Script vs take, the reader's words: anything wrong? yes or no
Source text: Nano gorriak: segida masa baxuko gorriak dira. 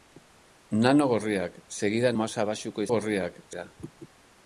no